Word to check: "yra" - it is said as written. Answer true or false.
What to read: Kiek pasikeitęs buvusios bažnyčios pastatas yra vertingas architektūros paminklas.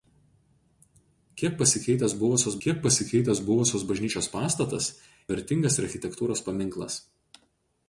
false